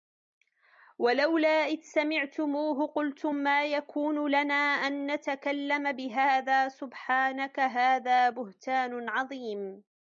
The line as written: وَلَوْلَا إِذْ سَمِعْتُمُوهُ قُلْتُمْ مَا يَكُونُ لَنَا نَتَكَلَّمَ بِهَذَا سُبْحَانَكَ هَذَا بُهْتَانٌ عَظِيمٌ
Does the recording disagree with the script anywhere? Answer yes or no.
yes